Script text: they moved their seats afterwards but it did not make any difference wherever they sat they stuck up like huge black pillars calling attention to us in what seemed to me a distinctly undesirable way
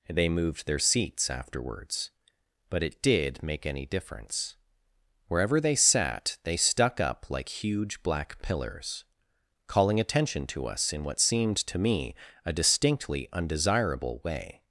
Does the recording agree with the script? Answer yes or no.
no